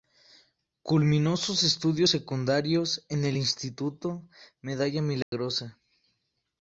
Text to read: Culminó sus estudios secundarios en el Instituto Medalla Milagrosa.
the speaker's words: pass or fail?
pass